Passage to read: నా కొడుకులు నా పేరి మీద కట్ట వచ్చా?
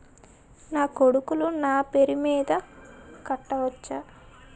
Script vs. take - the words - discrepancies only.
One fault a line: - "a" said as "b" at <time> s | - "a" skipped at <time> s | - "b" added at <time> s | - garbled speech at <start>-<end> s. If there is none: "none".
none